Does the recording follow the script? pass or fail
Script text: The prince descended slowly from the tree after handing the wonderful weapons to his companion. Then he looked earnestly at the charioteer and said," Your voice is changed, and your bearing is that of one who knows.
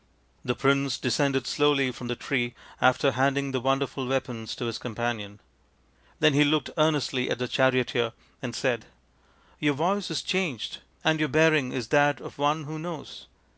pass